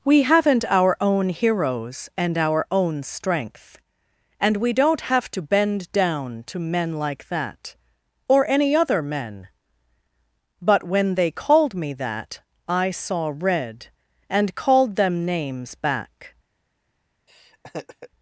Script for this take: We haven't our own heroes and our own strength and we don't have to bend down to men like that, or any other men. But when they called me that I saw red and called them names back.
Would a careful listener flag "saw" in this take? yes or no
no